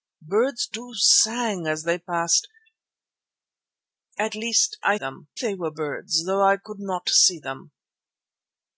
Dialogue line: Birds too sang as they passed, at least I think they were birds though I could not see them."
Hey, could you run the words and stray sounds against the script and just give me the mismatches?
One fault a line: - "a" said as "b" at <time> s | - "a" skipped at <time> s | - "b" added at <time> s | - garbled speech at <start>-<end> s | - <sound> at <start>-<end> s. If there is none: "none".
- "think" said as "them" at 5.0 s